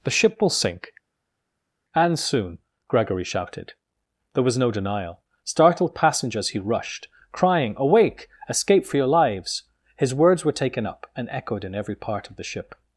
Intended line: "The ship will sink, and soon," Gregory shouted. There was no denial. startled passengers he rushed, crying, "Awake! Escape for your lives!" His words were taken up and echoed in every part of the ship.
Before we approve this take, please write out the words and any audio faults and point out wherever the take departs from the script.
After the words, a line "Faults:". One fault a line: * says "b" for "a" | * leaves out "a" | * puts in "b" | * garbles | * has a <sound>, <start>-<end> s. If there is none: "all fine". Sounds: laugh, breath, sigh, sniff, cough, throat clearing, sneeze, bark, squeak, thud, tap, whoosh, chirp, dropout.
"The ship will sink, and soon," Gregory shouted. There was no denial. startled passengers he rushed, crying, "Awake! Escape for your lives!" His words were taken up and echoed in every part of the ship.
Faults:
all fine